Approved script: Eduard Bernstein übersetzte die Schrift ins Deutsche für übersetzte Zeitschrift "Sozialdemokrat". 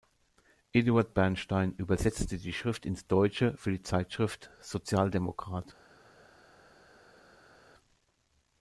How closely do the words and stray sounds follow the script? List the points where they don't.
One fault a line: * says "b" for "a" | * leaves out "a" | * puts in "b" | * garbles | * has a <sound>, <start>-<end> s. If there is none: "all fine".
* says "die" for "übersetzte"